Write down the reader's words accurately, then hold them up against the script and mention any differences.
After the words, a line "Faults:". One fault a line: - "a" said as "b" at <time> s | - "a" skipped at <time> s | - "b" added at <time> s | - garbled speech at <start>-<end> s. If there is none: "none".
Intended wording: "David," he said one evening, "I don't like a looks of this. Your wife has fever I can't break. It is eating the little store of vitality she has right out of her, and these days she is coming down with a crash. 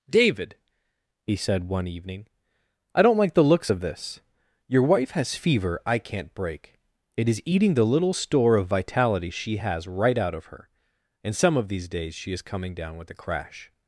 "David," he said one evening, "I don't like the looks of this. Your wife has fever I can't break. It is eating the little store of vitality she has right out of her, and some of these days she is coming down with a crash.
Faults:
- "a" said as "the" at 3.3 s
- "some of" added at 11.4 s